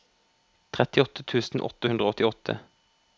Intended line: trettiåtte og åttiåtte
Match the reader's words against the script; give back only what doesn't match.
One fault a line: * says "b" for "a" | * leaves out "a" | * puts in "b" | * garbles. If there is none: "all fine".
* puts in "tusen åtte hundre"